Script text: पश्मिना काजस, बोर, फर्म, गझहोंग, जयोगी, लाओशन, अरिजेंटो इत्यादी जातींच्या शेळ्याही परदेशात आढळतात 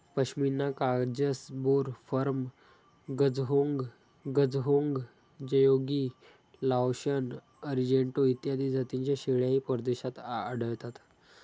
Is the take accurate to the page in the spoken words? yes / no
no